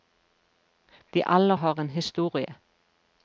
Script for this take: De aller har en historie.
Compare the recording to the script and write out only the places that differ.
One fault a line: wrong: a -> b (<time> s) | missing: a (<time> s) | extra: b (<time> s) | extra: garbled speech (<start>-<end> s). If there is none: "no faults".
no faults